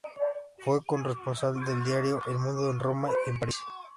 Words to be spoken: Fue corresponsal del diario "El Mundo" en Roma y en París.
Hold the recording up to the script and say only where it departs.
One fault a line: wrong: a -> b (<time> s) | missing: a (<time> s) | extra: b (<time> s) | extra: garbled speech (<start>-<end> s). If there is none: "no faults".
no faults